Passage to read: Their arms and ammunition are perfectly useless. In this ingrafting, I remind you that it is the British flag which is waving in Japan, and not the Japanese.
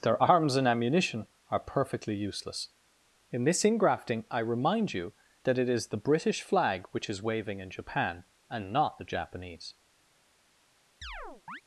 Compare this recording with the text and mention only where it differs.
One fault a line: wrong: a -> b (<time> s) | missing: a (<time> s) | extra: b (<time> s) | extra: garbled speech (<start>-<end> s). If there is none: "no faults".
no faults